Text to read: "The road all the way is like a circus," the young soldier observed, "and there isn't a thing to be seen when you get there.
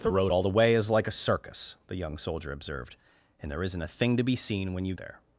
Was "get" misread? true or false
true